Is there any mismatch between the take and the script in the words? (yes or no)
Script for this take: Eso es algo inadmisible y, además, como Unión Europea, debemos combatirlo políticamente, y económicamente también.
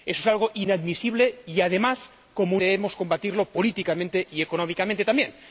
yes